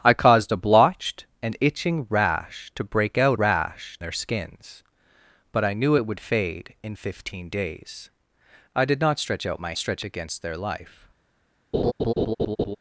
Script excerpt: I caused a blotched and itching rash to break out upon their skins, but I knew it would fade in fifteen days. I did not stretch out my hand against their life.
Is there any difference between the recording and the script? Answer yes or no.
yes